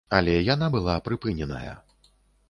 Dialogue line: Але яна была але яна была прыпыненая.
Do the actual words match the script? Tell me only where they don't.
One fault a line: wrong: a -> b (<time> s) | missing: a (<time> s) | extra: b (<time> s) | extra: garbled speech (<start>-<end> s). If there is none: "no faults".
missing: але яна была (0.9 s)